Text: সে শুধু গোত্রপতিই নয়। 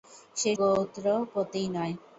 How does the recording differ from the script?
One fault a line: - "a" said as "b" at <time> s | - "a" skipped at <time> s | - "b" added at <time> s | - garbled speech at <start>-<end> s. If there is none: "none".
- "শুধু" skipped at 0.5 s